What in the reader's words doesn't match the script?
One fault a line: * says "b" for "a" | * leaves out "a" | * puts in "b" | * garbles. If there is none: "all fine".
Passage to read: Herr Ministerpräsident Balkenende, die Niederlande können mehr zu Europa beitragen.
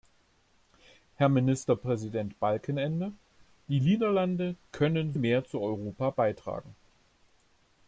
all fine